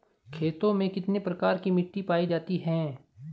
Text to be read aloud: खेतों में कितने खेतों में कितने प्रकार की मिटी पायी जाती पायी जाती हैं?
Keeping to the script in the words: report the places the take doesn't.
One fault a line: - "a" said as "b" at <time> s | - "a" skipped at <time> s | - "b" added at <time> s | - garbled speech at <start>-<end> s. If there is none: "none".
- "खेतों में कितने" skipped at 1.2 s
- "पायी जाती" skipped at 2.6 s